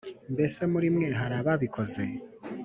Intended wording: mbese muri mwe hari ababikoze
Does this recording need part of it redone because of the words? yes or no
no